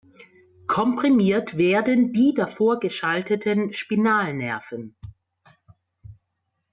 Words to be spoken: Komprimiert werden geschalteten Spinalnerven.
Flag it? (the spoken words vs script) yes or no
yes